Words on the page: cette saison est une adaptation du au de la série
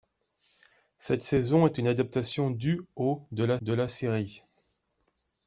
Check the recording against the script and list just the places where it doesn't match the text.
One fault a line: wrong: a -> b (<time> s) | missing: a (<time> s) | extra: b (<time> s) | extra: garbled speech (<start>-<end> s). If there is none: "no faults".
extra: de la (3.6 s)